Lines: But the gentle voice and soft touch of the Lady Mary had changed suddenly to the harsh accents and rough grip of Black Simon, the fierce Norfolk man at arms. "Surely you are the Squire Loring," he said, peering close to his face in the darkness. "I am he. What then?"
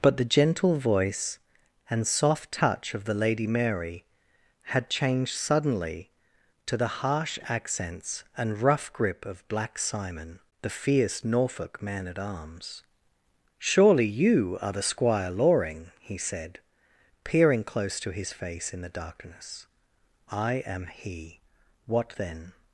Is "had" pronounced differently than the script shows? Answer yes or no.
no